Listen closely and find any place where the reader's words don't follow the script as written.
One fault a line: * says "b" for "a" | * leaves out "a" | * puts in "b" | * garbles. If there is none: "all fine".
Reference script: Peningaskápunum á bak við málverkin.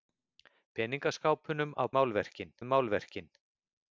* says "málverkin" for "bak"